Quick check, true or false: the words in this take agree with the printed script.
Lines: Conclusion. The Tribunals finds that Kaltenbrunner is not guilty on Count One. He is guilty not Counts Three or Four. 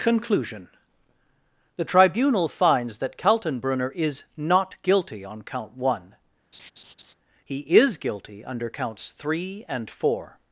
false